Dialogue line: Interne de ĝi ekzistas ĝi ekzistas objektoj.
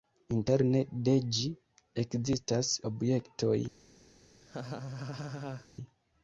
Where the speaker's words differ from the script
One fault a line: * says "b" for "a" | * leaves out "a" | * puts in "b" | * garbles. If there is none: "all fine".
* leaves out "ĝi ekzistas"